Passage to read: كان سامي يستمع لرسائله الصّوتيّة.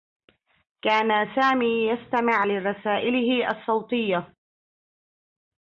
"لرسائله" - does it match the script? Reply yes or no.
yes